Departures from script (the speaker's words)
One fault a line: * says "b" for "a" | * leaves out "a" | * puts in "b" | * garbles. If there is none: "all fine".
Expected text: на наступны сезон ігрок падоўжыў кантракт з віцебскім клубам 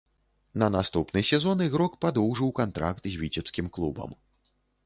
all fine